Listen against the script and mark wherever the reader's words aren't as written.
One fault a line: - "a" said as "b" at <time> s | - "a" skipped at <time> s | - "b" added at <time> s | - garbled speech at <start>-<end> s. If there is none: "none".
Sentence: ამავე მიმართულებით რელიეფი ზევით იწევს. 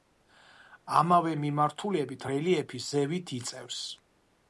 none